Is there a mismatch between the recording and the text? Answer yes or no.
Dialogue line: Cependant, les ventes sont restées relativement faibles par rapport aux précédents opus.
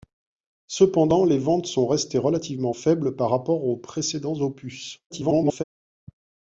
yes